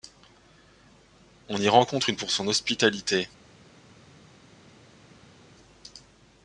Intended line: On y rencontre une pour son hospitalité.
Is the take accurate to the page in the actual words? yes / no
yes